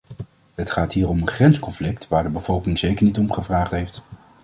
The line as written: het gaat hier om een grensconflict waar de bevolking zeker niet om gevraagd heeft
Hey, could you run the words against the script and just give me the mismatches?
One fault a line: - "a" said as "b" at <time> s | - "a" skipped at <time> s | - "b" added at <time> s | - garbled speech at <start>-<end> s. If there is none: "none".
none